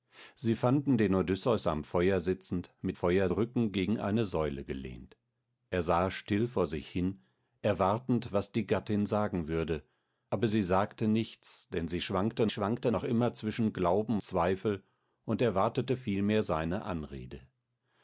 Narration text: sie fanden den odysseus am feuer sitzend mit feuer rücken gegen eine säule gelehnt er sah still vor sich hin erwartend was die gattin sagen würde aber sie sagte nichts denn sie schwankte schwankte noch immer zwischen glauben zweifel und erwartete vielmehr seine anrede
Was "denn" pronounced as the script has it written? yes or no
yes